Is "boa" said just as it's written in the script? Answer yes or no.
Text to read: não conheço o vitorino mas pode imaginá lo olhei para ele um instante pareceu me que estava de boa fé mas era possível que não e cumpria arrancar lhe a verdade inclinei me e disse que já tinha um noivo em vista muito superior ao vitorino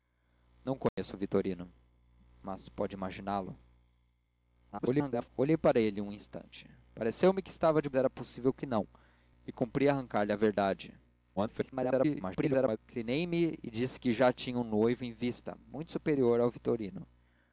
no